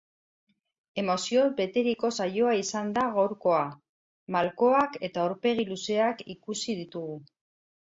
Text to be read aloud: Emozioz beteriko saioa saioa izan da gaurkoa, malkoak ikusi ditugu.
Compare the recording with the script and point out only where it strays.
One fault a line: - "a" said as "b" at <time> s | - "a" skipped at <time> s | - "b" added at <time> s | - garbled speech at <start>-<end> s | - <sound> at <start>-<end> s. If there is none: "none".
- "saioa" skipped at 2.5 s
- "eta aurpegi luzeak" added at 5.1 s